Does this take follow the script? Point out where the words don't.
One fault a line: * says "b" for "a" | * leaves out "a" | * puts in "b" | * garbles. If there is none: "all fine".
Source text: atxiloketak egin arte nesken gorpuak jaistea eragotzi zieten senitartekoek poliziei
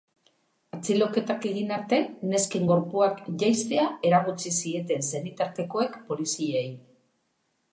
all fine